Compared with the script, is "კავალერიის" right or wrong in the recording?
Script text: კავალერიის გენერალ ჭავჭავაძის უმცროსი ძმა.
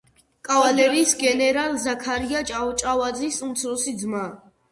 right